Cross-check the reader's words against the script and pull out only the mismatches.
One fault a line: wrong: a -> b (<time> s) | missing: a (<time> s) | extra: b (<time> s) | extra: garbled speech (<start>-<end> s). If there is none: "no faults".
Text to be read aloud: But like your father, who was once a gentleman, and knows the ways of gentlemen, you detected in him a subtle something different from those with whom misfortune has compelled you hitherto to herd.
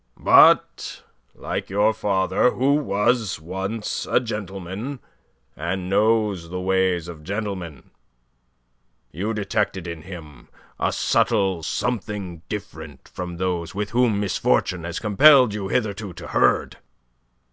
no faults